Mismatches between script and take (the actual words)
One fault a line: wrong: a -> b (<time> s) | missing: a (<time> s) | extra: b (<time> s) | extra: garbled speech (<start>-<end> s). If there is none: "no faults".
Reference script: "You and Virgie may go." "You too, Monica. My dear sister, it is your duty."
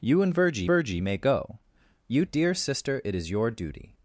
extra: Virgie (0.6 s)
missing: too Monica My (2.2 s)